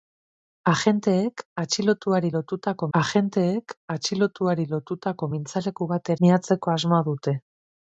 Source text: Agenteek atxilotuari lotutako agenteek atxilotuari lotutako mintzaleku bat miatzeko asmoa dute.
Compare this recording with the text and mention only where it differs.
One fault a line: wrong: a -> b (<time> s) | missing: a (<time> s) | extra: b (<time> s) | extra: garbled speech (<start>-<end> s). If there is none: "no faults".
no faults